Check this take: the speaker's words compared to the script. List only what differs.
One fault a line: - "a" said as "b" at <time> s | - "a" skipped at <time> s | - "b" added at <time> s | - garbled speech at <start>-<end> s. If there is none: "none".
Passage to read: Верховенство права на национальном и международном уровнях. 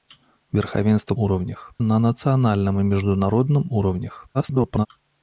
- "права" said as "уровнях" at 1.2 s
- garbled speech at 4.3-4.9 s